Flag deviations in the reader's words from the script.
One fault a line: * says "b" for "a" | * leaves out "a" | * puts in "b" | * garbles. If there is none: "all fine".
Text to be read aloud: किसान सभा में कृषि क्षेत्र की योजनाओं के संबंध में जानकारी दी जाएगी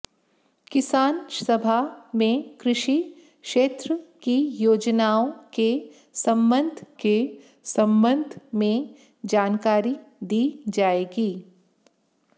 * puts in "के संबंध"